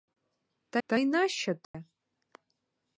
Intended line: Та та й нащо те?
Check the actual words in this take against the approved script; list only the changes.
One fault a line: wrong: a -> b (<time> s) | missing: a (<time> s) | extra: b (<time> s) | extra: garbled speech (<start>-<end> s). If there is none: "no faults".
no faults